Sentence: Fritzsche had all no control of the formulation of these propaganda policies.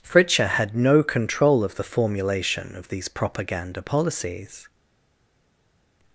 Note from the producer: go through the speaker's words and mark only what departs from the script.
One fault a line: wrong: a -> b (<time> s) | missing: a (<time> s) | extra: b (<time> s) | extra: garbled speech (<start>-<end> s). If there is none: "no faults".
missing: all (0.8 s)